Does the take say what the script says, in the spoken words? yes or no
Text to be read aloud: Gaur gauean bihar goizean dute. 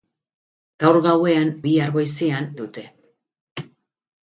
yes